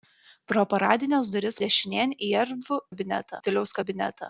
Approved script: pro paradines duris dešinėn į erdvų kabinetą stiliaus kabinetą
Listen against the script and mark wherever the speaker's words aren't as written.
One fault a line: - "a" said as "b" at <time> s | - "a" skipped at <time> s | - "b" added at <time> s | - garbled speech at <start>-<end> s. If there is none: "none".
none